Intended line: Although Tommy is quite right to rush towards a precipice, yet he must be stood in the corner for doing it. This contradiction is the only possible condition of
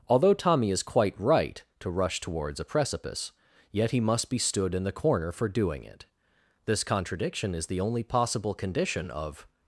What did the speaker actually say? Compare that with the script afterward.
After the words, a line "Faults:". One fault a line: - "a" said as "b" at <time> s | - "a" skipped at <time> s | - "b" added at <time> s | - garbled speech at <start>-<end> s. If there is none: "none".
Although Tommy is quite right to rush towards a precipice, yet he must be stood in the corner for doing it. This contradiction is the only possible condition of
Faults:
none